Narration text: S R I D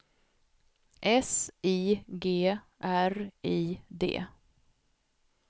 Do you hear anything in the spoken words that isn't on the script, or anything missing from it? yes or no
yes